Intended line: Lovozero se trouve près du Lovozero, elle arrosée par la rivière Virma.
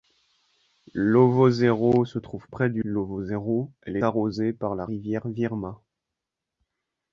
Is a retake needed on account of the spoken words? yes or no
no